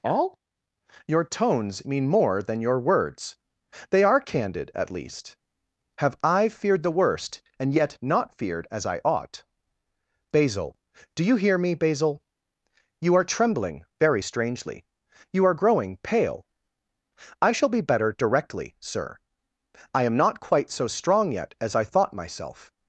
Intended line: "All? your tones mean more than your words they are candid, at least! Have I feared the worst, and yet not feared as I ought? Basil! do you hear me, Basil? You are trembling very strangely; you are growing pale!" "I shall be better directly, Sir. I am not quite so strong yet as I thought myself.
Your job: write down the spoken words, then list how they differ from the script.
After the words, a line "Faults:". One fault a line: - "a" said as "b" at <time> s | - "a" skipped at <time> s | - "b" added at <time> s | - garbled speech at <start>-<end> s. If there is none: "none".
"All? your tones mean more than your words they are candid, at least! Have I feared the worst, and yet not feared as I ought? Basil! do you hear me, Basil? You are trembling very strangely; you are growing pale!" "I shall be better directly, Sir. I am not quite so strong yet as I thought myself.
Faults:
none